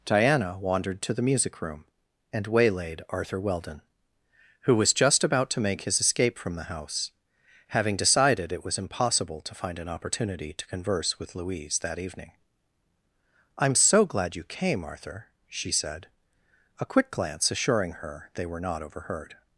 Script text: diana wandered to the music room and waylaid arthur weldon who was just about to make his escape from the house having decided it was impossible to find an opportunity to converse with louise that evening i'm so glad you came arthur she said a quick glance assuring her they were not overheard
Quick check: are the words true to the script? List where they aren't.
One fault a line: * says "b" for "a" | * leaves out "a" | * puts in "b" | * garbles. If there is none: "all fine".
all fine